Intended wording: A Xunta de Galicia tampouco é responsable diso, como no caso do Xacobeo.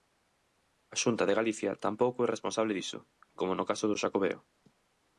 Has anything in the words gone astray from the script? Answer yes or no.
no